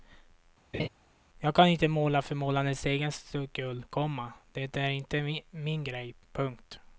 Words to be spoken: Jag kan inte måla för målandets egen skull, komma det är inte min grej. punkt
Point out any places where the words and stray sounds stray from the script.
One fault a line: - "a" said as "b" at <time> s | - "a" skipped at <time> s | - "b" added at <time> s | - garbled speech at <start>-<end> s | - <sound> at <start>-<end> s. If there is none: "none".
- laugh at 0.7-0.9 s